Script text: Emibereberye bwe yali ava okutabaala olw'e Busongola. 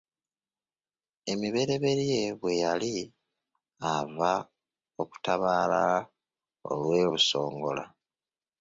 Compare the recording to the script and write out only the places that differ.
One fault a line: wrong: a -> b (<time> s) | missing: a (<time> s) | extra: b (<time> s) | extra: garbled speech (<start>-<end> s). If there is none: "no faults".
no faults